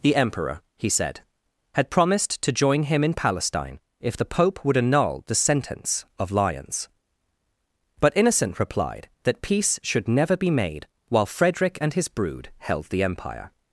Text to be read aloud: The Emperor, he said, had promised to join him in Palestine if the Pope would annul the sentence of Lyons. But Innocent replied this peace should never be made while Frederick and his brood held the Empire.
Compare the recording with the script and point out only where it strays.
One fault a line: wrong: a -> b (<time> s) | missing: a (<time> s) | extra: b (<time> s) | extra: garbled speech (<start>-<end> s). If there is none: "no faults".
wrong: this -> that (9.2 s)